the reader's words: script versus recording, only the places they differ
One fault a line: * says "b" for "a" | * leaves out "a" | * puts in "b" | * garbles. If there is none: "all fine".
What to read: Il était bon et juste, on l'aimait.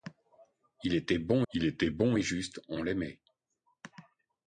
* puts in "il était bon"